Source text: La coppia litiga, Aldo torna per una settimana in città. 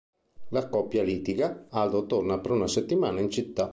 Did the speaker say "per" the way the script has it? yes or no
yes